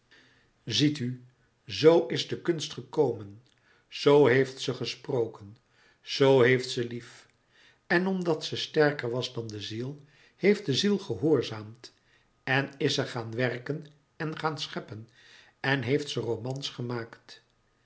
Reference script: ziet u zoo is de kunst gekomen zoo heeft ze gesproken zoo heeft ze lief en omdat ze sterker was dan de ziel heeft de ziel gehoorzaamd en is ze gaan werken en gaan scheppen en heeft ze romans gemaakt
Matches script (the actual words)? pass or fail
pass